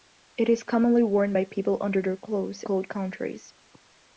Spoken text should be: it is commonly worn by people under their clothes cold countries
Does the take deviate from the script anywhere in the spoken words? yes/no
no